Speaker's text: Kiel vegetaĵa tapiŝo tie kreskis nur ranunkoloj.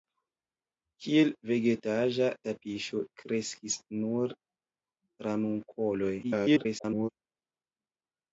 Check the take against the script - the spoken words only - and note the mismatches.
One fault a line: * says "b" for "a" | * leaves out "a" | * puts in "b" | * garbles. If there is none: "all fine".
* leaves out "tie"
* garbles